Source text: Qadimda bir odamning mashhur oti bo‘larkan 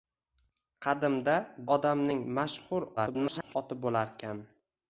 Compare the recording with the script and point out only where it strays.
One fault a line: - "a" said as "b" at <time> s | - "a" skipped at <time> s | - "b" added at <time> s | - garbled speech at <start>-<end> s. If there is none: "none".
- "bir" skipped at 1.4 s
- garbled speech at 3.0-3.6 s